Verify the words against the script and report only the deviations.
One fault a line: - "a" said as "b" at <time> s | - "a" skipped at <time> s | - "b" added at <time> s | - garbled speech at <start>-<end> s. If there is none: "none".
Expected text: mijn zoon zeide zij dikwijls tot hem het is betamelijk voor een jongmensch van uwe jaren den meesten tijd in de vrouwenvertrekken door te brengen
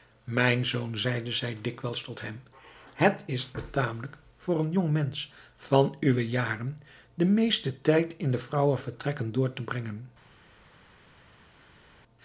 none